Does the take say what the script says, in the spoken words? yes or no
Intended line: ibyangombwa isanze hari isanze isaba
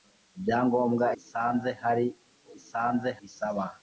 yes